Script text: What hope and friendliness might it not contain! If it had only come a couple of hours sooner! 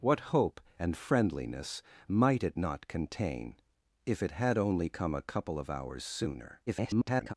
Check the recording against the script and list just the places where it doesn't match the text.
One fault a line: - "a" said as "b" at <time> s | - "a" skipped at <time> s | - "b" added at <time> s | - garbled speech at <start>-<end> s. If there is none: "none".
- garbled speech at 6.7-7.3 s